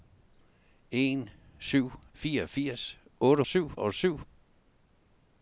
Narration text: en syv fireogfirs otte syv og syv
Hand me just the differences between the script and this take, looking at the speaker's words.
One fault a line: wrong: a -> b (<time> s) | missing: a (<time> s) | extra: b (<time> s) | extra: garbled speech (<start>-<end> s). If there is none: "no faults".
no faults